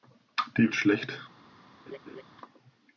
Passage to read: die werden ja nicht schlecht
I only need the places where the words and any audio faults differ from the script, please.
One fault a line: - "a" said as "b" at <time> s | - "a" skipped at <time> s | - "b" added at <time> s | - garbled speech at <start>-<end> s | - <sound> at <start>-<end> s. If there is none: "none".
- "werden ja nicht" skipped at 0.7 s
- laugh at 1.9-2.2 s